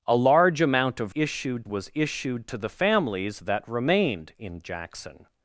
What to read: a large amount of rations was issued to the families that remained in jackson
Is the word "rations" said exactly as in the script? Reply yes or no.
no